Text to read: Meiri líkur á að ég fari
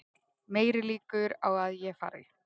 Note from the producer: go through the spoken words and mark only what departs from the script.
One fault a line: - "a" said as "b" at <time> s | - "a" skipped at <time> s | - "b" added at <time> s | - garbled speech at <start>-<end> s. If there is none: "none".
none